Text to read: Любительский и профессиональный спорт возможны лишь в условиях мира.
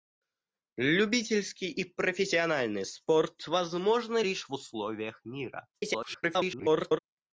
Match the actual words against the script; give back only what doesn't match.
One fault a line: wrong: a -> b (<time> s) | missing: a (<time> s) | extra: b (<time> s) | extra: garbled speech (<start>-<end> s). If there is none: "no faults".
extra: garbled speech (5.7-7.0 s)